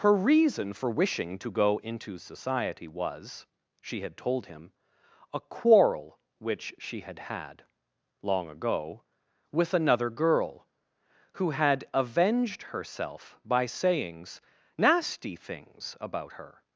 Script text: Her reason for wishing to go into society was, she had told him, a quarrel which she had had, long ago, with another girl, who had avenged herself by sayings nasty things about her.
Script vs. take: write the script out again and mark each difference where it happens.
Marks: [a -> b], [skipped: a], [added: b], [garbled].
Her reason for wishing to go into society was, she had told him, a quarrel which she had had, long ago, with another girl, who had avenged herself by sayings nasty things about her.